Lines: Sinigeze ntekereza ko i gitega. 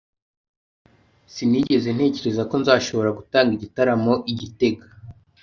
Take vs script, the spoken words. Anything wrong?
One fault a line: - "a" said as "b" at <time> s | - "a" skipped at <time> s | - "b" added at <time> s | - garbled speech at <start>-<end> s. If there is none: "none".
- "nzashobora gutanga igitaramo" added at 2.6 s